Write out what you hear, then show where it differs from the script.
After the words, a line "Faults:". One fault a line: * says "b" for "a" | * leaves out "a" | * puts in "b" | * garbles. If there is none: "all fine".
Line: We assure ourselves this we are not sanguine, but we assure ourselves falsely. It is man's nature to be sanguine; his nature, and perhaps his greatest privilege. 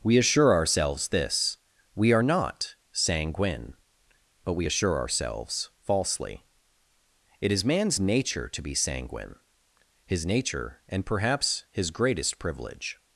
We assure ourselves this we are not sanguine, but we assure ourselves falsely. It is man's nature to be sanguine; his nature, and perhaps his greatest privilege.
Faults:
all fine